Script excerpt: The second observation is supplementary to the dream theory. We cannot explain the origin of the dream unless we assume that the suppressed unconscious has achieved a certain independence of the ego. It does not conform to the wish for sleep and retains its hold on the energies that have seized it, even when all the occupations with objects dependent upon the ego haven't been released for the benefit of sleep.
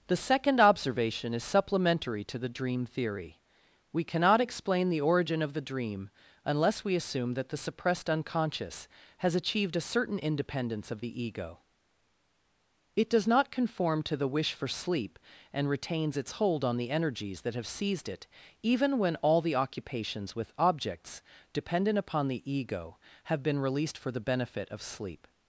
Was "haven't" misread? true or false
true